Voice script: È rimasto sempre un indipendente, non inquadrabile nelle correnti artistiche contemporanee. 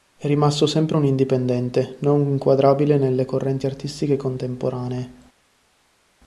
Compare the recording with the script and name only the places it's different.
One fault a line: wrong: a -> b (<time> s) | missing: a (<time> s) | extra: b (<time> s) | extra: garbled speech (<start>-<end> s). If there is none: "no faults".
no faults